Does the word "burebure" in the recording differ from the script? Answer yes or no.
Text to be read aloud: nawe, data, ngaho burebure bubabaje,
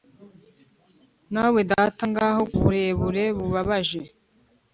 no